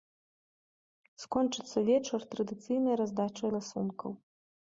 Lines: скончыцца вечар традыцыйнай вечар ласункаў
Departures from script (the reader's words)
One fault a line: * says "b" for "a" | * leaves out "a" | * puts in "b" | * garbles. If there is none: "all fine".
* says "раздачай" for "вечар"